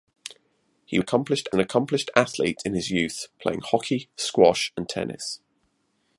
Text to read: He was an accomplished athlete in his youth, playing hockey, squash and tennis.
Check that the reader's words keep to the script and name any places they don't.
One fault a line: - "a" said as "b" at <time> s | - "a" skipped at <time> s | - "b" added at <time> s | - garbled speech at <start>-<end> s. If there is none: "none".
- "was" said as "accomplished" at 1.0 s